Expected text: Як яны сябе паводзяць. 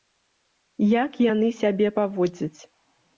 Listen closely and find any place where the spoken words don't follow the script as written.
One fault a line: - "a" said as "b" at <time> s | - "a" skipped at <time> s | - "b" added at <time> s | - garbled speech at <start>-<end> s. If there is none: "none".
none